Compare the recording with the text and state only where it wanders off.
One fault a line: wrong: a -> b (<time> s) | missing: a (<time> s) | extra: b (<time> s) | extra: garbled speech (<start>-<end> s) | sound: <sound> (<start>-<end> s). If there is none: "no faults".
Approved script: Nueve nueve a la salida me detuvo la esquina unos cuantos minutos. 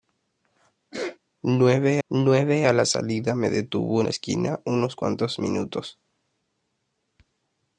sound: sneeze (0.9-1.2 s)